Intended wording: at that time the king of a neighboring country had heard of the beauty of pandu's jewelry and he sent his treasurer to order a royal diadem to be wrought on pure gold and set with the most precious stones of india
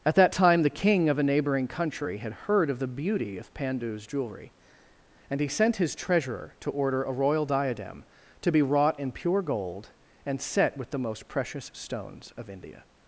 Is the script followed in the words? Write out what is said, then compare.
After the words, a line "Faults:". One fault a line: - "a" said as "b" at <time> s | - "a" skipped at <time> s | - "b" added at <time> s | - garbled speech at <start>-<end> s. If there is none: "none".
at that time the king of a neighboring country had heard of the beauty of pandu's jewelry and he sent his treasurer to order a royal diadem to be wrought in pure gold and set with the most precious stones of india
Faults:
- "on" said as "in" at 9.0 s